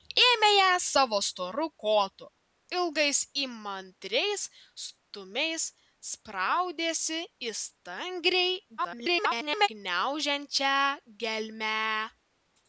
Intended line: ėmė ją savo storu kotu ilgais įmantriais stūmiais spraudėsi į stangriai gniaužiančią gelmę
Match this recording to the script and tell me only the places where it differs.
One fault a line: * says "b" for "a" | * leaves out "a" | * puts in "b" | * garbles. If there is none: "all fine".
* garbles